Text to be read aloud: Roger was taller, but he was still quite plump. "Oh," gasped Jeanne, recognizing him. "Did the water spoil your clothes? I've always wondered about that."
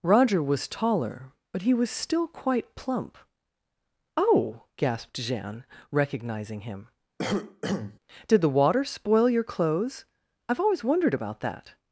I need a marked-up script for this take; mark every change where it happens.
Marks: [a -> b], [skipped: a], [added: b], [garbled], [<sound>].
Roger was taller, but he was still quite plump. "Oh," gasped Jeanne, recognizing him. [cough] "Did the water spoil your clothes? I've always wondered about that."